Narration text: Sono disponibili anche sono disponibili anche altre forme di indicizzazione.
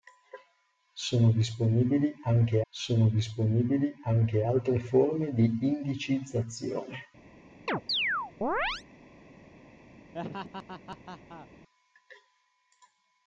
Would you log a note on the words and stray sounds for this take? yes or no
yes